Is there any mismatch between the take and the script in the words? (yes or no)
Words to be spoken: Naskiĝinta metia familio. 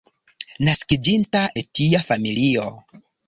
no